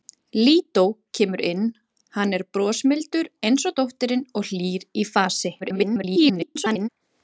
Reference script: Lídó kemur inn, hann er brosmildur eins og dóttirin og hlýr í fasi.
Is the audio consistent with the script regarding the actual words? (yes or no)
no